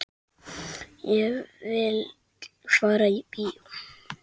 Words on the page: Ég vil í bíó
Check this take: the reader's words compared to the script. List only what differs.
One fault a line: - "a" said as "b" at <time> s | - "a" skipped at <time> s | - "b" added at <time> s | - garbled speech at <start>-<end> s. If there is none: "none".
- "fara" added at 2.8 s